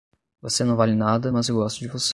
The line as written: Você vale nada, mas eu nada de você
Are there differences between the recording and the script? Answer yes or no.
yes